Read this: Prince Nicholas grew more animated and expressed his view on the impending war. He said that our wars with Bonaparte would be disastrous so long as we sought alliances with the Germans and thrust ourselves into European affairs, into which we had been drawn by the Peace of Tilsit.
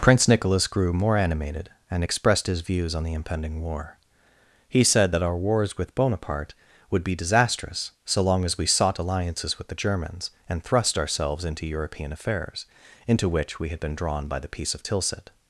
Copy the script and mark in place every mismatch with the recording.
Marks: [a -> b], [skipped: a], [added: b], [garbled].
Prince Nicholas grew more animated and expressed his [view -> views] on the impending war. He said that our wars with Bonaparte would be disastrous so long as we sought alliances with the Germans and thrust ourselves into European affairs, into which we had been drawn by the Peace of Tilsit.